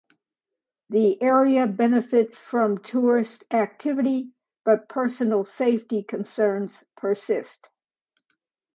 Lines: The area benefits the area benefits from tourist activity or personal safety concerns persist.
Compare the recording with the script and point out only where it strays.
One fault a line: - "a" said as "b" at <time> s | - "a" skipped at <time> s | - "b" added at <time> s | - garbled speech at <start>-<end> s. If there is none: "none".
- "the area benefits" skipped at 2.4 s
- "or" said as "but" at 4.7 s